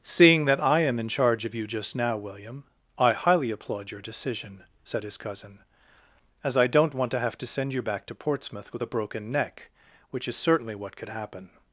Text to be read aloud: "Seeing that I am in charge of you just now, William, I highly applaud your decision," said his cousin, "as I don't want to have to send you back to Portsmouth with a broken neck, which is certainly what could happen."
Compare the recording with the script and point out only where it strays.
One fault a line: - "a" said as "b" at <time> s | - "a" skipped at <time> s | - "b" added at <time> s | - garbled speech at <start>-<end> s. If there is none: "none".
none